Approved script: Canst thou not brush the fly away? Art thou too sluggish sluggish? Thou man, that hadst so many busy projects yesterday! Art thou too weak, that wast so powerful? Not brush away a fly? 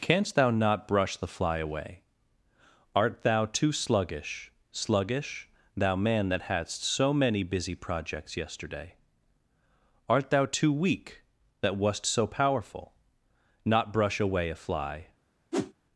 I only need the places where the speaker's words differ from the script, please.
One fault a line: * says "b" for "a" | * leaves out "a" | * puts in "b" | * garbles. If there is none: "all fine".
all fine